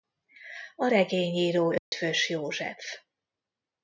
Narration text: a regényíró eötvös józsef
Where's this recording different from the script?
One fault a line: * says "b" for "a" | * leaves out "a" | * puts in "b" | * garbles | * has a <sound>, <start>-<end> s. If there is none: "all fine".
* has a dropout, 1.8-1.9 s